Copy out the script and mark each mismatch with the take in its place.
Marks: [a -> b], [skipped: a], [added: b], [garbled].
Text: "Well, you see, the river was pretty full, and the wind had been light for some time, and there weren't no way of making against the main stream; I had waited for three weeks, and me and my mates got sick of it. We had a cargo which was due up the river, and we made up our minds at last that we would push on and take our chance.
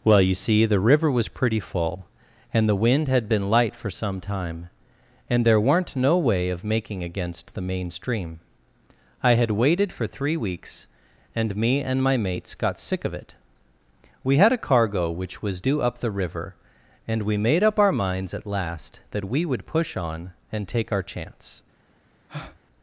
"Well, you see, the river was pretty full, and the wind had been light for some time, and there weren't no way of making against the main stream; I had waited for three weeks, and me and my mates got sick of it. We had a cargo which was due up the river, and we made up our minds at last that we would push on and take our chance.